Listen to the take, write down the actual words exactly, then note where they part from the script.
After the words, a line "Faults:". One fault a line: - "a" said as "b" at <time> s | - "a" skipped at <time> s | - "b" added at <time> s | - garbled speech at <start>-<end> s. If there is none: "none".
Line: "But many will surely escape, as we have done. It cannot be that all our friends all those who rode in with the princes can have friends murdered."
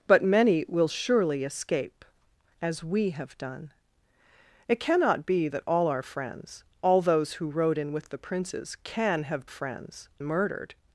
"But many will surely escape, as we have done. It cannot be that all our friends all those who rode in with the princes can have friends murdered."
Faults:
none